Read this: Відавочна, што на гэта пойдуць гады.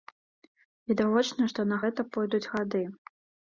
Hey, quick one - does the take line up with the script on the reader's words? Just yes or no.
yes